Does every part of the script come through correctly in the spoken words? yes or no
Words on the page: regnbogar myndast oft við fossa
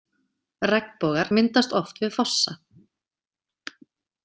yes